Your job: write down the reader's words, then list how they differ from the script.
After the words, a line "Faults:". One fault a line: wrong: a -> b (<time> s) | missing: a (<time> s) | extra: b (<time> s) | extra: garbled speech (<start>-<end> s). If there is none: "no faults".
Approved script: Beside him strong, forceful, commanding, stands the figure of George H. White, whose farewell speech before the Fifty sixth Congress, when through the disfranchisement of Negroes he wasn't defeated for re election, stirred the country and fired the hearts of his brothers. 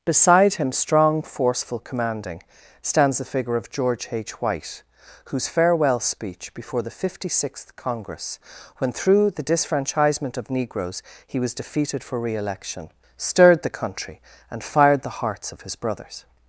Beside him strong, forceful, commanding, stands the figure of George H. White, whose farewell speech before the Fifty sixth Congress, when through the disfranchisement of Negroes he was defeated for re election, stirred the country and fired the hearts of his brothers.
Faults:
wrong: wasn't -> was (11.4 s)